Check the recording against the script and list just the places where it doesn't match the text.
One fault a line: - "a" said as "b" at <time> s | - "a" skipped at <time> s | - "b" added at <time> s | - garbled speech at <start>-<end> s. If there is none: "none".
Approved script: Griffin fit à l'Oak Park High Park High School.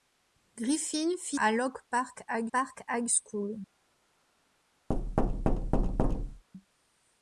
none